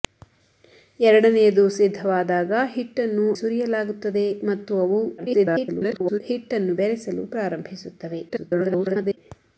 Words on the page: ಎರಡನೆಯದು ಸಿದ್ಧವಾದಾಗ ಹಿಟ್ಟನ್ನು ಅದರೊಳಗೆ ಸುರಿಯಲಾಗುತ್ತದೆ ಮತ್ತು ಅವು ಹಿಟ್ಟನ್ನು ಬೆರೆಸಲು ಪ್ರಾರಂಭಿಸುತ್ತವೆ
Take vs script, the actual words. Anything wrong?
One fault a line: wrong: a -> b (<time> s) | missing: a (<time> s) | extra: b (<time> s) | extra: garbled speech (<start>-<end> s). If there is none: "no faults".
missing: ಅದರೊಳಗೆ (3.3 s)
extra: garbled speech (5.2-6.2 s)
extra: garbled speech (8.3-9.2 s)